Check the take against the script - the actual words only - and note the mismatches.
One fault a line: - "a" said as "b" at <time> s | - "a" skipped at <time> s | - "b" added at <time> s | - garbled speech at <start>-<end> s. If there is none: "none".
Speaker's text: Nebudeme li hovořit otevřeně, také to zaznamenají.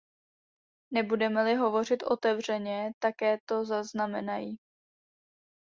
none